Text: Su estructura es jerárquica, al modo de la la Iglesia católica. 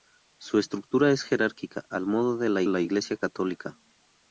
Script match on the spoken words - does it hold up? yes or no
yes